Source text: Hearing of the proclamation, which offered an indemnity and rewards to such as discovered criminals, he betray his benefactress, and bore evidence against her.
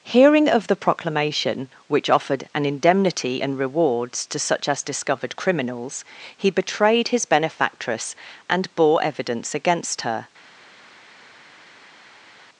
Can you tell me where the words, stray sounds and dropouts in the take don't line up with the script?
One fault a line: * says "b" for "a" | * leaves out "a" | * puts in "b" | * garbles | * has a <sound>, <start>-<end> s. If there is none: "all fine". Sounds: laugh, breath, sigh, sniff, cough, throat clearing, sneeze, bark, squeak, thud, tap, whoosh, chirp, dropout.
* says "betrayed" for "betray"